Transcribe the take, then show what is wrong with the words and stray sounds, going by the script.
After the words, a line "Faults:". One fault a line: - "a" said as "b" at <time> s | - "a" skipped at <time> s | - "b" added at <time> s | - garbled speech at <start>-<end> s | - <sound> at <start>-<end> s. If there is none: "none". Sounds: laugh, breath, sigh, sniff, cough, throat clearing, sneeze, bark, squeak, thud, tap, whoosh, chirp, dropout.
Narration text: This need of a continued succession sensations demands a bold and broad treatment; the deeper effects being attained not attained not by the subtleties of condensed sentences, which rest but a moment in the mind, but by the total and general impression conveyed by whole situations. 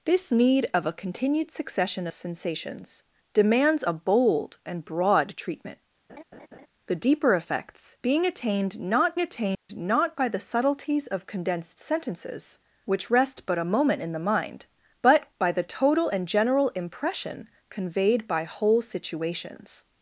This need of a continued succession sensations demands a bold and broad treatment; the deeper effects being attained not attained not by the subtleties of condensed sentences, which rest but a moment in the mind, but by the total and general impression conveyed by whole situations.
Faults:
- laugh at 6.1-6.7 s
- dropout at 9.5-9.7 s